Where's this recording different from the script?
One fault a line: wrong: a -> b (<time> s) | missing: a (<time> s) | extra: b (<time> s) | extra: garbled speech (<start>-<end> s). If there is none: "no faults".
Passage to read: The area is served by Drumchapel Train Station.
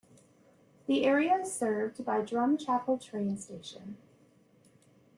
no faults